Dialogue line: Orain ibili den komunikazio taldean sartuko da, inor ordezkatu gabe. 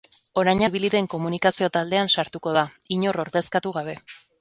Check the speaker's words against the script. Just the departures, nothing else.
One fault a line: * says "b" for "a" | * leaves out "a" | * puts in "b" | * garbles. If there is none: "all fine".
all fine